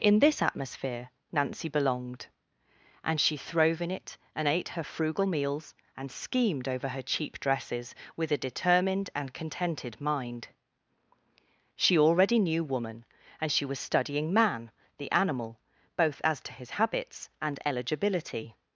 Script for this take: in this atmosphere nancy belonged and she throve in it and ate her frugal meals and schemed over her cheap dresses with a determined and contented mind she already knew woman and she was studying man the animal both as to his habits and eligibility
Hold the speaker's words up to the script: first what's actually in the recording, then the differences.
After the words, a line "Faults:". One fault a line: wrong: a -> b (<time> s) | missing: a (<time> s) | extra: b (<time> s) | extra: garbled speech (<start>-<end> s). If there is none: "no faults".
in this atmosphere nancy belonged and she throve in it and ate her frugal meals and schemed over her cheap dresses with a determined and contented mind she already knew woman and she was studying man the animal both as to his habits and eligibility
Faults:
no faults